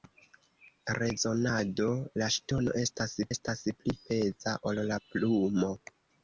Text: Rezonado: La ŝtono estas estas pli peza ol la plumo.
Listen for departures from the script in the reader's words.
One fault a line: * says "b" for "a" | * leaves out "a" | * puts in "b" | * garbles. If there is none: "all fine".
all fine